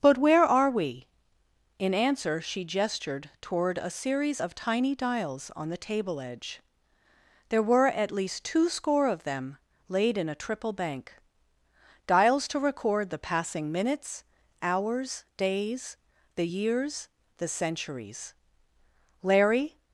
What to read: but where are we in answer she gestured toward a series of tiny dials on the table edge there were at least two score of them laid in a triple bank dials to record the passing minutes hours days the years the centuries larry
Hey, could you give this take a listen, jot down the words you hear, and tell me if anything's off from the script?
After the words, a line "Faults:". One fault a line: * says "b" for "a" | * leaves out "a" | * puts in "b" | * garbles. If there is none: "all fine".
but where are we in answer she gestured toward a series of tiny dials on the table edge there were at least two score of them laid in a triple bank dials to record the passing minutes hours days the years the centuries larry
Faults:
all fine